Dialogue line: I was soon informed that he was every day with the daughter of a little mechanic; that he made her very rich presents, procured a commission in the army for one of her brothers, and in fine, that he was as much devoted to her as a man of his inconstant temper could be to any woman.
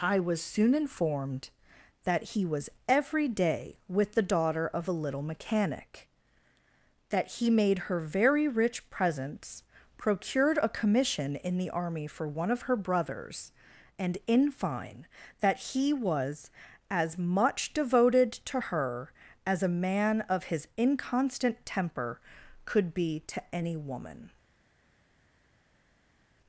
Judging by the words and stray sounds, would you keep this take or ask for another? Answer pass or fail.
pass